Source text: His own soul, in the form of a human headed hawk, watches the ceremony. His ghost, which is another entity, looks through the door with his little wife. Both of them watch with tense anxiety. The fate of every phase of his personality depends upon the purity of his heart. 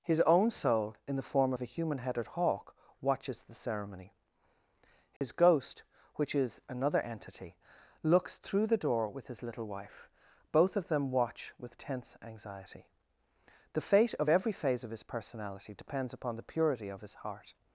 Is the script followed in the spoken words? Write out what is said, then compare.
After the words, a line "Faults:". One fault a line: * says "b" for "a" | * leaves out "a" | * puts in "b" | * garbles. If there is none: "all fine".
His own soul, in the form of a human headed hawk, watches the ceremony. His ghost, which is another entity, looks through the door with his little wife. Both of them watch with tense anxiety. The fate of every phase of his personality depends upon the purity of his heart.
Faults:
all fine